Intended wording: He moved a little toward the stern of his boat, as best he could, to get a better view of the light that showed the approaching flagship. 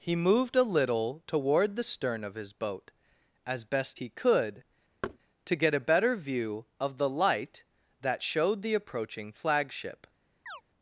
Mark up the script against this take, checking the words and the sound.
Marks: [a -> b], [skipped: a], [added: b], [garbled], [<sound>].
He moved a little toward the stern of his boat, as best he could, [thud] to get a better view of the light that showed the approaching flagship. [chirp]